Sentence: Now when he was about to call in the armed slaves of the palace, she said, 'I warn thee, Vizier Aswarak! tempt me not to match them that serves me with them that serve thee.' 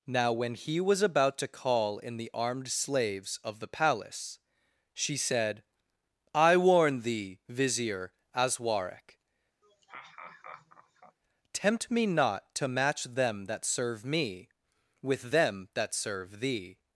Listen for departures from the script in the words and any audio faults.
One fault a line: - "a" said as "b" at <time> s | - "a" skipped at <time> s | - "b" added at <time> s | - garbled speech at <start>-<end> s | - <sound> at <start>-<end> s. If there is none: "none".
- laugh at 9.6-11.2 s
- "serves" said as "serve" at 13.7 s